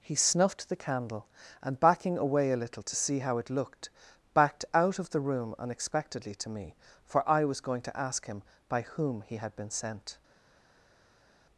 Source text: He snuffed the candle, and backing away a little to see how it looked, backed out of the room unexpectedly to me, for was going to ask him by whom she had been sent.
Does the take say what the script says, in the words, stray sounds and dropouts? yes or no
no